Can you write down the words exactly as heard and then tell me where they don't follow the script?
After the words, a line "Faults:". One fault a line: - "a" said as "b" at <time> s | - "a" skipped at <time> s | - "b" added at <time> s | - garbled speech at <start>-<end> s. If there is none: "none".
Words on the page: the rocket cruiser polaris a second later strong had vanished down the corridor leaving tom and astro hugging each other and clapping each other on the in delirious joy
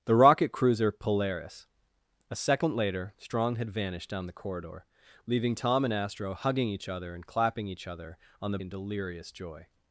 the rocket cruiser polaris a second later strong had vanished down the corridor leaving tom and astro hugging each other and clapping each other on the in delirious joy
Faults:
none